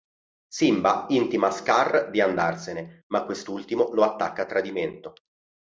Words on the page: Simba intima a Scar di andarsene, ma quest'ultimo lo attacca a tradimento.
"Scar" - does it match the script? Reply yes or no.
yes